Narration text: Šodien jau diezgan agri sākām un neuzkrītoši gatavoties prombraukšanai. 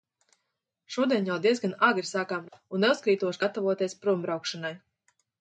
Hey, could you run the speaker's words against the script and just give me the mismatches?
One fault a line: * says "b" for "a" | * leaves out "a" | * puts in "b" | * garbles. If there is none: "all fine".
all fine